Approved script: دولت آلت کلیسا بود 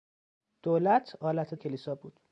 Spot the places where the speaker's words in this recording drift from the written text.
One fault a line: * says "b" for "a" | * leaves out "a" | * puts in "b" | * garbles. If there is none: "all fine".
all fine